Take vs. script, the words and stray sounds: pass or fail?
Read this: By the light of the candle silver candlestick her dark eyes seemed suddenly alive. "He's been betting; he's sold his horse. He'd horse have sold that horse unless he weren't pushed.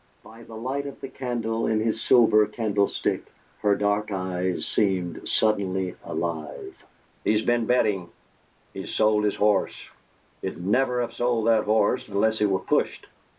fail